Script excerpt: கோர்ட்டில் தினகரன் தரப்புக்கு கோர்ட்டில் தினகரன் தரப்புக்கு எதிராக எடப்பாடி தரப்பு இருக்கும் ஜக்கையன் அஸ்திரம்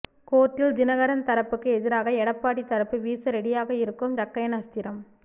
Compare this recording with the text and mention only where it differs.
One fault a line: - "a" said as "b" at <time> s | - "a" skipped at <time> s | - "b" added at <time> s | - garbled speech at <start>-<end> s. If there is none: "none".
- "கோர்ட்டில் தினகரன் தரப்புக்கு" skipped at 1.7 s
- "வீச ரெடியாக" added at 3.0 s